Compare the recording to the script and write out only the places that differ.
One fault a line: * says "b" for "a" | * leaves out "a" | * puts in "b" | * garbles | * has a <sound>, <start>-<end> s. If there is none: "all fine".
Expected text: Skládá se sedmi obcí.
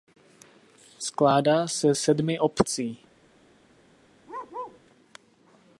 * has a bark, 4.3-4.8 s